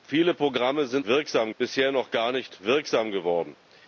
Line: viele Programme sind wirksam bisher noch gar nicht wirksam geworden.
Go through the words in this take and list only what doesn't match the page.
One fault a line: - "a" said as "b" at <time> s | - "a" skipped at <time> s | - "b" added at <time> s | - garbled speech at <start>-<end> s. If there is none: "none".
none